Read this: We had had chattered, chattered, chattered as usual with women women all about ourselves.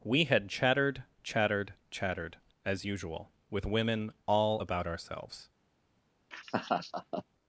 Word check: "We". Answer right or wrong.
right